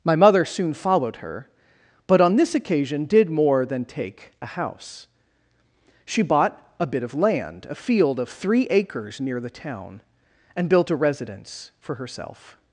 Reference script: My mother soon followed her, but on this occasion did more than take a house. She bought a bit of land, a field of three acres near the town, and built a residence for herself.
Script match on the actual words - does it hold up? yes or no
yes